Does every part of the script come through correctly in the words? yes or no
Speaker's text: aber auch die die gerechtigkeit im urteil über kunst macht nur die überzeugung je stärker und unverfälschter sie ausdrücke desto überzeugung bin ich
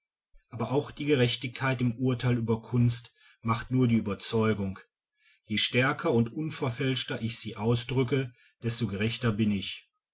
no